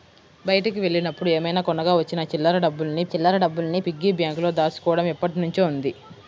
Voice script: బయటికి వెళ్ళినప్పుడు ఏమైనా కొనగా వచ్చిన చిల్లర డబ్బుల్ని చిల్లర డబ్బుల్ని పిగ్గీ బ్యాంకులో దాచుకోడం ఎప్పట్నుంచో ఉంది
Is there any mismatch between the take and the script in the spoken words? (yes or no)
no